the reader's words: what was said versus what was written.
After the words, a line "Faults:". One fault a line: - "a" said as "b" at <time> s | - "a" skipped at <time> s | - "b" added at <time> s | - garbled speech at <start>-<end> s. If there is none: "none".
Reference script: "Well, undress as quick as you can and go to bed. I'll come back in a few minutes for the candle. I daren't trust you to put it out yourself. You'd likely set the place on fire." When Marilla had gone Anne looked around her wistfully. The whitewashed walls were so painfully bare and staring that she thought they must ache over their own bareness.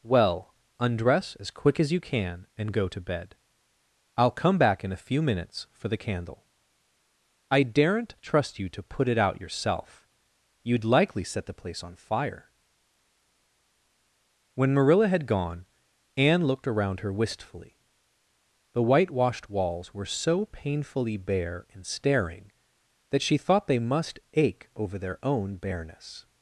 "Well, undress as quick as you can and go to bed. I'll come back in a few minutes for the candle. I daren't trust you to put it out yourself. You'd likely set the place on fire." When Marilla had gone Anne looked around her wistfully. The whitewashed walls were so painfully bare and staring that she thought they must ache over their own bareness.
Faults:
none